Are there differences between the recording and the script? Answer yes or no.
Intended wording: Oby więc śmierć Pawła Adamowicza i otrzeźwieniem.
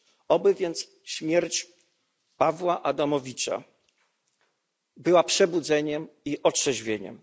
yes